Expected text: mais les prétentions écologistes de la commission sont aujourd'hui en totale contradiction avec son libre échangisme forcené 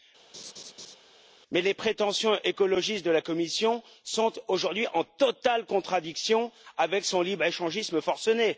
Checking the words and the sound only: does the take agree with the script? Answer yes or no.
no